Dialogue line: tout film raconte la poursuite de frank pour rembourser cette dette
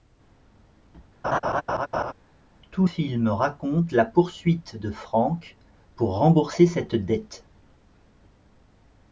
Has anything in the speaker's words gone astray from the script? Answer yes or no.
no